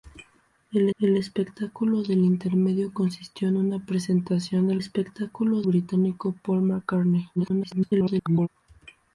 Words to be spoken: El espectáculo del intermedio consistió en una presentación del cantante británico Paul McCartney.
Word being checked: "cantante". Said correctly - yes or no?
no